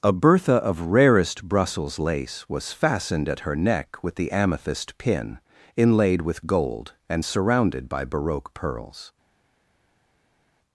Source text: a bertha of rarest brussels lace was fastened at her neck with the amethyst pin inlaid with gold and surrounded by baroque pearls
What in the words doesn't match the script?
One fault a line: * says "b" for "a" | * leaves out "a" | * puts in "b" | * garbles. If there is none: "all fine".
all fine